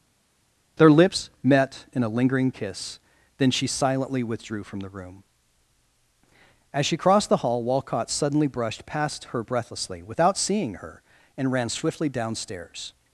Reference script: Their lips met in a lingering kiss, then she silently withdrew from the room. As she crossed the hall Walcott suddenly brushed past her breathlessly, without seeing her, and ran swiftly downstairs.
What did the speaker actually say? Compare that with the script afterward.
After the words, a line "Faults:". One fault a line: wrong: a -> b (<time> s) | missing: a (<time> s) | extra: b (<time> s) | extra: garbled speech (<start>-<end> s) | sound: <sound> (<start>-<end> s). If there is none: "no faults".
Their lips met in a lingering kiss, then she silently withdrew from the room. As she crossed the hall Walcott suddenly brushed past her breathlessly, without seeing her, and ran swiftly downstairs.
Faults:
no faults